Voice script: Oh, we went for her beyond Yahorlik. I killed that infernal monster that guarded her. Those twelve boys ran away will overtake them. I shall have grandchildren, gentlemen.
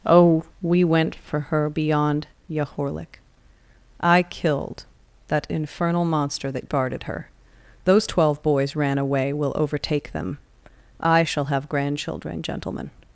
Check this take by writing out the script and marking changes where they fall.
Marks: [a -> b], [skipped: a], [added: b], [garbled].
Oh, we went for her beyond Yahorlik. I killed that infernal monster that guarded her. Those twelve boys ran away will overtake them. I shall have grandchildren, gentlemen.